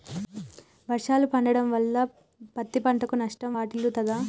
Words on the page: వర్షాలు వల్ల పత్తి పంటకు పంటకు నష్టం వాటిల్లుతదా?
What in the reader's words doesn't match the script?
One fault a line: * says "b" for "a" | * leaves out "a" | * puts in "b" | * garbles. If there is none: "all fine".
* puts in "పడటం"
* leaves out "పంటకు"